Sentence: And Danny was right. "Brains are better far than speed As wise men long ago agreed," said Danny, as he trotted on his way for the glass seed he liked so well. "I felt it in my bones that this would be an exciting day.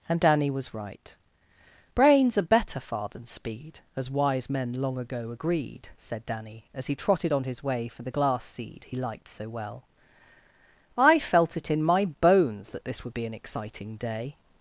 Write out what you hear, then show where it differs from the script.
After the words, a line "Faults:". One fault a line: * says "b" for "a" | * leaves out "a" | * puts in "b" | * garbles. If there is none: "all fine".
And Danny was right. "Brains are better far than speed As wise men long ago agreed," said Danny, as he trotted on his way for the glass seed he liked so well. "I felt it in my bones that this would be an exciting day.
Faults:
all fine